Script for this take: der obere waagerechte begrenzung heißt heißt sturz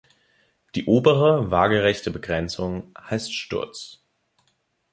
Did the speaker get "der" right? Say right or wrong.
wrong